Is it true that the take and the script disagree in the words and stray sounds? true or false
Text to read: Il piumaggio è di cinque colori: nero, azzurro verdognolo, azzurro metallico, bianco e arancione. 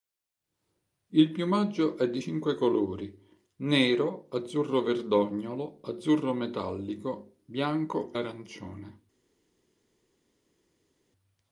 true